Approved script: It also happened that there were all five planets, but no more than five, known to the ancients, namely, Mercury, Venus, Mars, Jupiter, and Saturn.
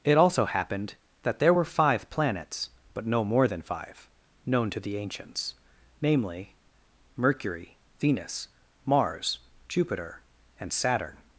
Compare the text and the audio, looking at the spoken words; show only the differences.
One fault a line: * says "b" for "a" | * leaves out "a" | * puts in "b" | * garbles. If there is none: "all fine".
* leaves out "all"